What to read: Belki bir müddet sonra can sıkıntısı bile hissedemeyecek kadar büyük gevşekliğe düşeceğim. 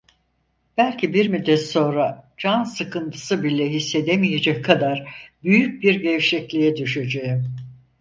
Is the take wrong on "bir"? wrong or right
right